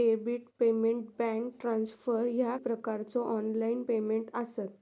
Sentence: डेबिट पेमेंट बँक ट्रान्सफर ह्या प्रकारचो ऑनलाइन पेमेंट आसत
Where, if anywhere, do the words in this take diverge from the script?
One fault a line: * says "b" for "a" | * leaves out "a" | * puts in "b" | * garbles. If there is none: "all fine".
all fine